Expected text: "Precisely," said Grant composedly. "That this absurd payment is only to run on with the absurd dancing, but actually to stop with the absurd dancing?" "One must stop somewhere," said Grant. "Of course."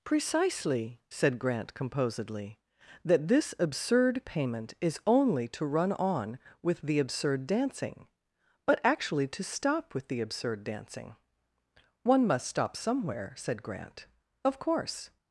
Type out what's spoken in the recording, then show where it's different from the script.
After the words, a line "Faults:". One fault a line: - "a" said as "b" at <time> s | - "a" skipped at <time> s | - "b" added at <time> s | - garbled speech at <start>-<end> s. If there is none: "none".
"Precisely," said Grant composedly. "That this absurd payment is only to run on with the absurd dancing, but actually to stop with the absurd dancing?" "One must stop somewhere," said Grant. "Of course."
Faults:
none